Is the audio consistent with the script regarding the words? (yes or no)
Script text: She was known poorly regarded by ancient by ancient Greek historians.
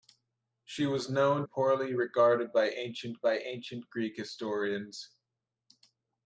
yes